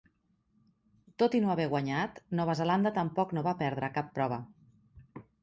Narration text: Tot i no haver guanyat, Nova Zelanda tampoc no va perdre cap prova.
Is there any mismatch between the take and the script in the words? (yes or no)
no